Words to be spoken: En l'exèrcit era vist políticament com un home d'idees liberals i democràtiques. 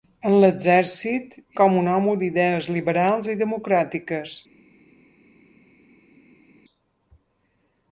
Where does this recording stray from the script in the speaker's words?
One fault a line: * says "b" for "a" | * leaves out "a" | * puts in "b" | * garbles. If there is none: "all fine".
* leaves out "era vist políticament"